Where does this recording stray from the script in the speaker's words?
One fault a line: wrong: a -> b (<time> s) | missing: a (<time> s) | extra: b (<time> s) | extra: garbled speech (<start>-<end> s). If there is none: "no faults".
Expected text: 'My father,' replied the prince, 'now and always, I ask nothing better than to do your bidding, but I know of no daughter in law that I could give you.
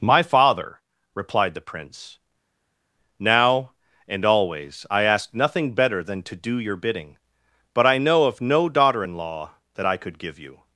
no faults